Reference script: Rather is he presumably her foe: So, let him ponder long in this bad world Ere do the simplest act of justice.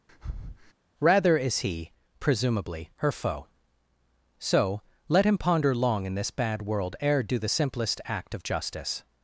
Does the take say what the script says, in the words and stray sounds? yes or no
no